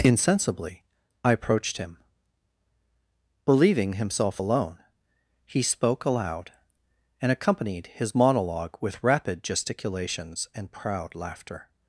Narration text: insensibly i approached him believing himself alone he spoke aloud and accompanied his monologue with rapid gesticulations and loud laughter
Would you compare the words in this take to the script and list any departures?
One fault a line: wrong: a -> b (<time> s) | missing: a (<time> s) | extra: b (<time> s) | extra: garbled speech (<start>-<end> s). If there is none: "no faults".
wrong: loud -> proud (10.7 s)